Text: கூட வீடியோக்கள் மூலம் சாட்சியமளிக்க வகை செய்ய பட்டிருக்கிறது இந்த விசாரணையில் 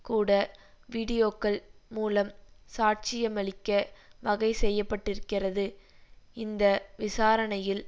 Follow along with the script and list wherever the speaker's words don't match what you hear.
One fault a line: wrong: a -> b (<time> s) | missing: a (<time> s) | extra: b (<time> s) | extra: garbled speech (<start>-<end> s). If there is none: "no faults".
no faults